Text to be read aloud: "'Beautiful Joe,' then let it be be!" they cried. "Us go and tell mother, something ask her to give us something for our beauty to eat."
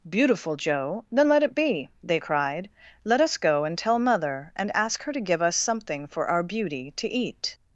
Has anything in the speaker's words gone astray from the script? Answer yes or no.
yes